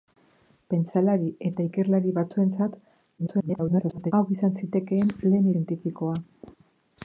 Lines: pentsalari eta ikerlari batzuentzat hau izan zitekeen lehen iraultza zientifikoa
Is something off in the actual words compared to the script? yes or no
yes